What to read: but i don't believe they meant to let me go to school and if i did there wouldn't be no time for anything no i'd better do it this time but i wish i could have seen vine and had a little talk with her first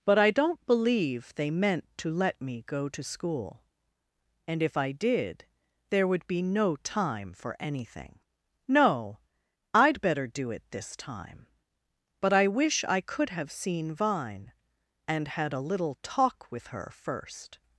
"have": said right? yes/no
yes